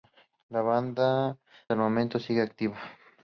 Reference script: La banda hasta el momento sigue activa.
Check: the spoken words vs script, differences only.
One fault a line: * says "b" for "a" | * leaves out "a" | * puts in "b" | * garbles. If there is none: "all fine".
* leaves out "hasta"